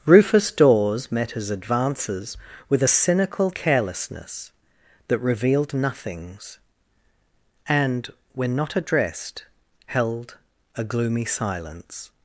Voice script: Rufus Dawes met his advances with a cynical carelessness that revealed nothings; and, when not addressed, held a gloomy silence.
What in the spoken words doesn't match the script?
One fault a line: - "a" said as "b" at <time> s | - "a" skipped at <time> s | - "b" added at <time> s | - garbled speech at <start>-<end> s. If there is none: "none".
none